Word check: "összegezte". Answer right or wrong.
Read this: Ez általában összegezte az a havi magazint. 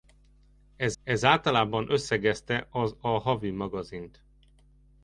right